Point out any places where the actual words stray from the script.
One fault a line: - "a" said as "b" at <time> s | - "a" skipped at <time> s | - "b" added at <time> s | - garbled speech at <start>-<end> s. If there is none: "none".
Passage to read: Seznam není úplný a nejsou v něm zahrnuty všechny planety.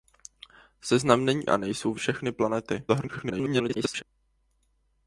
- "úplný" skipped at 1.5 s
- "něm zahrnuty" skipped at 2.0 s
- garbled speech at 2.9-4.0 s